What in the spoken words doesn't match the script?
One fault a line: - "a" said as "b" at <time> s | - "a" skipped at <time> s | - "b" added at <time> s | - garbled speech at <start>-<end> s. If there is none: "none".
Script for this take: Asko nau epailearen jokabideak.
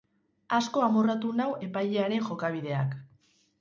- "amorratu" added at 0.8 s